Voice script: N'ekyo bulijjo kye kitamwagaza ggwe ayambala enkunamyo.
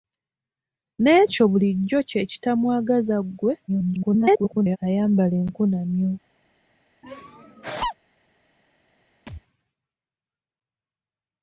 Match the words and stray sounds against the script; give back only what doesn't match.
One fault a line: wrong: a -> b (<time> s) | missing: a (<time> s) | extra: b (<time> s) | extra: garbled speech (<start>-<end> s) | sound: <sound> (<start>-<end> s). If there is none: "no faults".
extra: garbled speech (3.7-4.8 s)
sound: laugh (7.0-8.0 s)
sound: thud (9.3-9.4 s)